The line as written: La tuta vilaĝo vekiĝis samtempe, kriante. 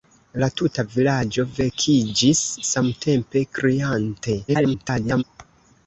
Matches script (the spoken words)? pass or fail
fail